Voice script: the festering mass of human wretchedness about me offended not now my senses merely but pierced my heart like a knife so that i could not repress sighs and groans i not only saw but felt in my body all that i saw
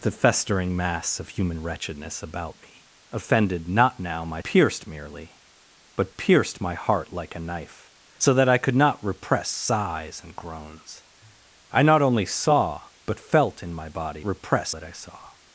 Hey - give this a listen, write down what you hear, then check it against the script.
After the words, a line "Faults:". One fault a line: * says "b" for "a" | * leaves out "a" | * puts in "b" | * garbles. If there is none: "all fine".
the festering mass of human wretchedness about me offended not now my pierced merely but pierced my heart like a knife so that i could not repress sighs and groans i not only saw but felt in my body repress that i saw
Faults:
* says "pierced" for "senses"
* says "repress" for "all"